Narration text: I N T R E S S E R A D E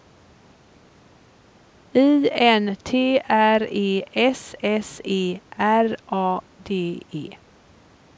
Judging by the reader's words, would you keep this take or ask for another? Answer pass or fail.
pass